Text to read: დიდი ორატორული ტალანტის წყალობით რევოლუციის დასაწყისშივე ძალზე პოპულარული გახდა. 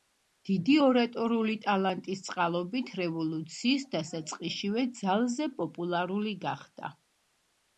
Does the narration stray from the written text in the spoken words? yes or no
no